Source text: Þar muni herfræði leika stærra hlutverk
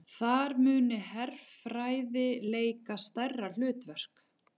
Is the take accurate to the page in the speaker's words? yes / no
yes